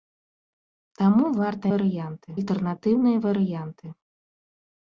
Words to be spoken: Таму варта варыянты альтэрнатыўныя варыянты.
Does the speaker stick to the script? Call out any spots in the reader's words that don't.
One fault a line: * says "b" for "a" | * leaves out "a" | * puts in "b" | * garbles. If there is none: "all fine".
all fine